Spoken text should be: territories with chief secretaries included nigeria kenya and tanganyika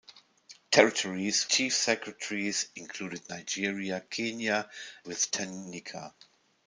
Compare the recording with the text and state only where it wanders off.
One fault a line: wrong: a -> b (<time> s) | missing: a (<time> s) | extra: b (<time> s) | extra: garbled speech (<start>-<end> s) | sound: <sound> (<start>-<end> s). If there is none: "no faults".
missing: with (1.5 s)
wrong: and -> with (5.0 s)